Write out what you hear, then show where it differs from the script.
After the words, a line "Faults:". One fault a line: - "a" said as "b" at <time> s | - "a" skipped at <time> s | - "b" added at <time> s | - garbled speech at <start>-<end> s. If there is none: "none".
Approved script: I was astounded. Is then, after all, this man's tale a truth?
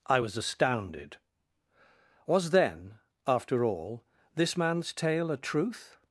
I was astounded. Was then, after all, this man's tale a truth?
Faults:
- "Is" said as "Was" at 2.3 s